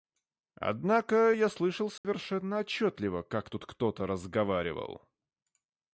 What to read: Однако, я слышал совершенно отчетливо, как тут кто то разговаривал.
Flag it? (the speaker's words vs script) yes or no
no